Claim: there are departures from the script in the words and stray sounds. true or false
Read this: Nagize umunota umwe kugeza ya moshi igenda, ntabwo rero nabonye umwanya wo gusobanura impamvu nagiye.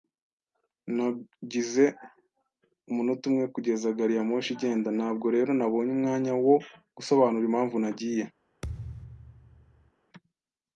true